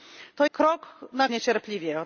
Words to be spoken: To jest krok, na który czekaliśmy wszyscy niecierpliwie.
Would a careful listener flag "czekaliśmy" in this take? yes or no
yes